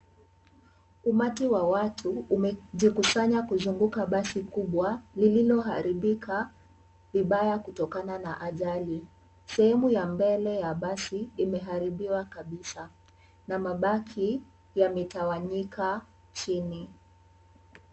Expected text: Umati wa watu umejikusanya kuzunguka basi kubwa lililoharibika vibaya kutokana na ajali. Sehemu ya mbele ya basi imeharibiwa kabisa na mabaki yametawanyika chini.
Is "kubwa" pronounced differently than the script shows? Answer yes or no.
no